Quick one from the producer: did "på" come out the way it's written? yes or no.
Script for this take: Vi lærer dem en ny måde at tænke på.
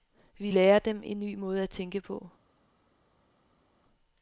yes